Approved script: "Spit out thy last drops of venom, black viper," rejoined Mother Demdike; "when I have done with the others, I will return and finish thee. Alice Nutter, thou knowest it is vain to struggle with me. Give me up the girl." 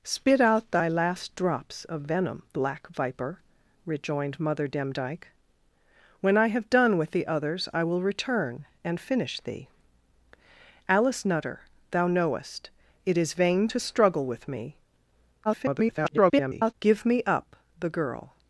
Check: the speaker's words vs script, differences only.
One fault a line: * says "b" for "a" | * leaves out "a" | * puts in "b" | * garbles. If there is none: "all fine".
* garbles